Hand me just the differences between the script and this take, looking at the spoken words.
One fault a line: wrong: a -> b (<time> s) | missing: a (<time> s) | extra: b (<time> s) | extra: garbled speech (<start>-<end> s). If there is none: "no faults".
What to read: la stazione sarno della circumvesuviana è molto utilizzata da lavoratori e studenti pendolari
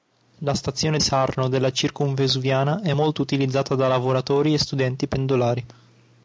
no faults